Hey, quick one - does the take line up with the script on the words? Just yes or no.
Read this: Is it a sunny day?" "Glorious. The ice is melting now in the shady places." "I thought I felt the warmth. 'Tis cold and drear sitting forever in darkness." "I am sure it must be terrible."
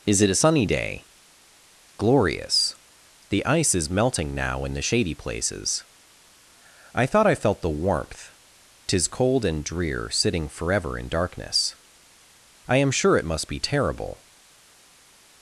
yes